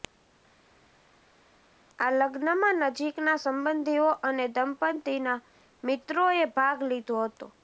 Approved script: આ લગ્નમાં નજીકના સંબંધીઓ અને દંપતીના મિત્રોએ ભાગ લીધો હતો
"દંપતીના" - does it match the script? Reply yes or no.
yes